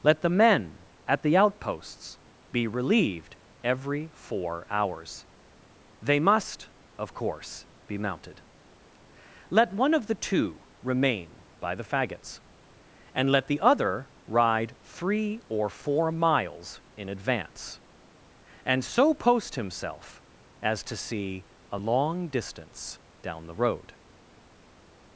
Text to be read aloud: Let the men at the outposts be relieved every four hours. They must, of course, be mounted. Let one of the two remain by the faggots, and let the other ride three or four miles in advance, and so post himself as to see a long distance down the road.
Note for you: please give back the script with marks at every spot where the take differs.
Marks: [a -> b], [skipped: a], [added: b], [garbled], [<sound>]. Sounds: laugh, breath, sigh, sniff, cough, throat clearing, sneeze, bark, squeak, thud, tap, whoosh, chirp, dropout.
Let the men at the outposts be relieved every four hours. They must, of course, be mounted. Let one of the two remain by the faggots, and let the other ride three or four miles in advance, and so post himself as to see a long distance down the road.